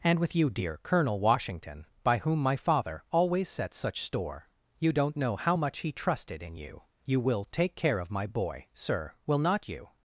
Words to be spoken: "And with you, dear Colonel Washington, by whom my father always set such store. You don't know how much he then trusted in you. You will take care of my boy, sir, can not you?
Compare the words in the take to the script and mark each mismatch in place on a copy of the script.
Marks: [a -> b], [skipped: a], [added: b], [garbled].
"And with you, dear Colonel Washington, by whom my father always set such store. You don't know how much he [skipped: then] trusted in you. You will take care of my boy, sir, [can -> will] not you?